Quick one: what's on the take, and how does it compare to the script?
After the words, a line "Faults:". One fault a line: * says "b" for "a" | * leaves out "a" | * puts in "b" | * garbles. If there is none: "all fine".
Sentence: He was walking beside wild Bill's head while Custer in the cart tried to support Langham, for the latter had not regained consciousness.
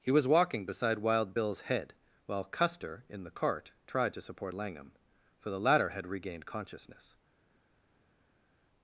He was walking beside wild Bill's head while Custer in the cart tried to support Langham, for the latter had regained consciousness.
Faults:
* leaves out "not"